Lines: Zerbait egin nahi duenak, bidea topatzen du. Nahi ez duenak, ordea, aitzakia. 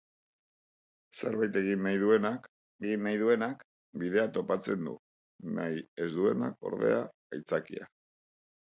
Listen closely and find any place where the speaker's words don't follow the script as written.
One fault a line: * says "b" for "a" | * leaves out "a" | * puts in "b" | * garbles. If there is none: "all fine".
* puts in "egin nahi duenak"